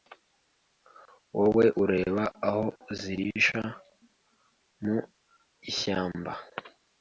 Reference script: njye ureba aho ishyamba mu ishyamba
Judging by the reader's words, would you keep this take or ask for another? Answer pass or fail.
fail